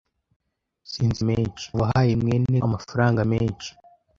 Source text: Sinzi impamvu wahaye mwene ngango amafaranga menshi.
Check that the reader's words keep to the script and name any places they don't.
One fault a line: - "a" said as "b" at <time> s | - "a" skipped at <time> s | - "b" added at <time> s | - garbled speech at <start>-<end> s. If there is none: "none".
- "impamvu" said as "menshi" at 1.3 s
- "ngango" skipped at 2.6 s